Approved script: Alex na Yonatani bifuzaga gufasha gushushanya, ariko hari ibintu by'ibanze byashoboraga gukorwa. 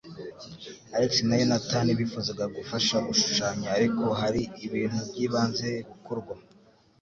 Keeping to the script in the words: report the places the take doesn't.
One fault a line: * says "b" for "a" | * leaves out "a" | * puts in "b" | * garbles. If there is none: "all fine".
* leaves out "byashoboraga"